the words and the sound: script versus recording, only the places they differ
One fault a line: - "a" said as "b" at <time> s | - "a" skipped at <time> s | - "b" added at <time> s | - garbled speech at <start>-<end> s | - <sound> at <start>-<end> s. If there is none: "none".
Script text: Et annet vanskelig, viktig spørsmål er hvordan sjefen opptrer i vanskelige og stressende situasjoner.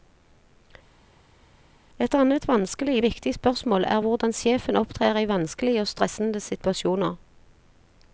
none